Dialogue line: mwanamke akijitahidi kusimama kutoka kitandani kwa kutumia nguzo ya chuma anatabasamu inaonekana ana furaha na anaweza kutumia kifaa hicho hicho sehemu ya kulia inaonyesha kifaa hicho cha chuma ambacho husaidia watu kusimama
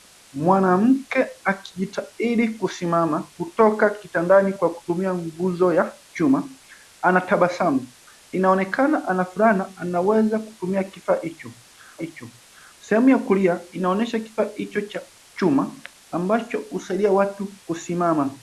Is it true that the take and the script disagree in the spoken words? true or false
false